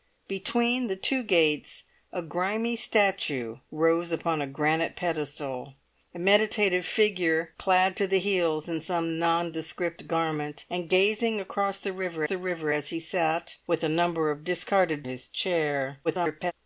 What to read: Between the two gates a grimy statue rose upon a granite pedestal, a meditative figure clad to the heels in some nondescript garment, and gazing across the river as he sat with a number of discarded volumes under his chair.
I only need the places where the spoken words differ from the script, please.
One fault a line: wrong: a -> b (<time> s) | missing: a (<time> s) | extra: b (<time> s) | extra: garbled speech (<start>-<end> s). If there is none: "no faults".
extra: the river (12.2 s)
missing: volumes under (15.0 s)
extra: garbled speech (16.0-16.5 s)